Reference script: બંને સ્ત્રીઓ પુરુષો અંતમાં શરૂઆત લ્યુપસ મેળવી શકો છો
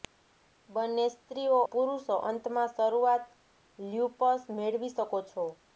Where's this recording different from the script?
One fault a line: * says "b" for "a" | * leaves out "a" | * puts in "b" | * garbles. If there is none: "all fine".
all fine